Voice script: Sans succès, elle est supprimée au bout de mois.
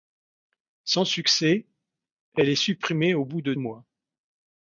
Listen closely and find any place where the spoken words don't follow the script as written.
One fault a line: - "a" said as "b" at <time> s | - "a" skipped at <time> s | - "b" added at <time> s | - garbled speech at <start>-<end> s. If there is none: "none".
none